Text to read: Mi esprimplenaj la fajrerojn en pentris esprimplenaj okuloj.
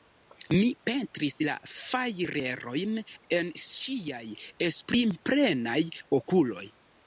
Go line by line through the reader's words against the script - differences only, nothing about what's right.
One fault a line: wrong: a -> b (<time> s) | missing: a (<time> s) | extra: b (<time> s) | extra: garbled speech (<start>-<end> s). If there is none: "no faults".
wrong: esprimplenaj -> pentris (0.9 s)
wrong: pentris -> ŝiaj (3.7 s)